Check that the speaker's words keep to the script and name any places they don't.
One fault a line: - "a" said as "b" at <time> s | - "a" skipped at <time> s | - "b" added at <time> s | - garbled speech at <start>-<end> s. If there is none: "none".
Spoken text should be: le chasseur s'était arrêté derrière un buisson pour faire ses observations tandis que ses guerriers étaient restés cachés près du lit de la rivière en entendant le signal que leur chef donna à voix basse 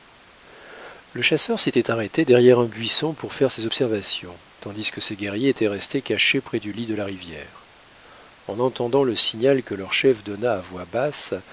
none